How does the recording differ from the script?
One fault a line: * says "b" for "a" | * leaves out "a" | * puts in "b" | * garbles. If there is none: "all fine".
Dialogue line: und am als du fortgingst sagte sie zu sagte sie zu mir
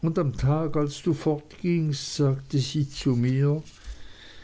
* puts in "tag"
* leaves out "sagte sie zu"